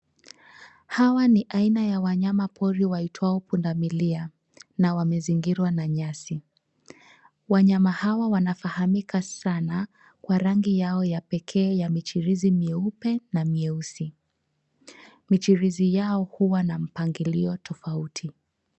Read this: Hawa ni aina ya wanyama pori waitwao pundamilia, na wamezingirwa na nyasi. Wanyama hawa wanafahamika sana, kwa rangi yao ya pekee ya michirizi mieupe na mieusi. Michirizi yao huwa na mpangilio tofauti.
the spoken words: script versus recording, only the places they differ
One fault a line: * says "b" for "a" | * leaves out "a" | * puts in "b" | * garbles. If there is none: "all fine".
all fine